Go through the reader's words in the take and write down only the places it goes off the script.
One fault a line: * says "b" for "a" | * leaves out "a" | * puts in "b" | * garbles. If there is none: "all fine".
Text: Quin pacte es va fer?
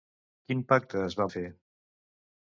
all fine